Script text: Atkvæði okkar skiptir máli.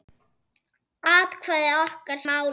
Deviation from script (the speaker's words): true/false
true